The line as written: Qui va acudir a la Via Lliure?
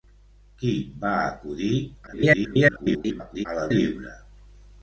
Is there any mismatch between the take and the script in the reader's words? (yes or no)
yes